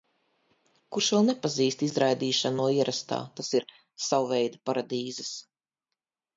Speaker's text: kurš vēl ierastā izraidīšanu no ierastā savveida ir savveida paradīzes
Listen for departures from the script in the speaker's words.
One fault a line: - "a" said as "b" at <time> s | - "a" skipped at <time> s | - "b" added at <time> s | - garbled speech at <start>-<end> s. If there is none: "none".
- "ierastā" said as "nepazīst" at 1.3 s
- "savveida" said as "tas" at 3.4 s